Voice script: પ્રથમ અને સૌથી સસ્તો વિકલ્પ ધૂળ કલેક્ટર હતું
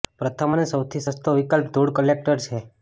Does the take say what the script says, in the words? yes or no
no